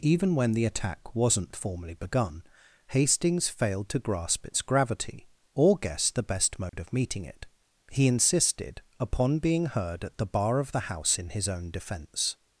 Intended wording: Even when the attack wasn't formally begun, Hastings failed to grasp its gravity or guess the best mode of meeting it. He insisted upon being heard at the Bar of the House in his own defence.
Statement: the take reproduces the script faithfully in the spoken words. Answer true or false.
true